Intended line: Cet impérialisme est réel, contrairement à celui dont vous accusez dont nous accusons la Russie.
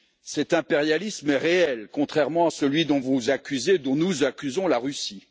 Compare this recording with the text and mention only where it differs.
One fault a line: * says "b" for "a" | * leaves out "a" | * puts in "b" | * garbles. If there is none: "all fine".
all fine